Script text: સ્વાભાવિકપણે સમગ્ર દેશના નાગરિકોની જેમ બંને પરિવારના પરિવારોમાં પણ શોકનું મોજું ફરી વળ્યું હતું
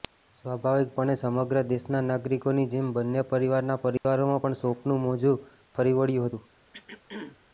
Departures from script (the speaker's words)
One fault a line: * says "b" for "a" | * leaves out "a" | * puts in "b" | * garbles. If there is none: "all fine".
all fine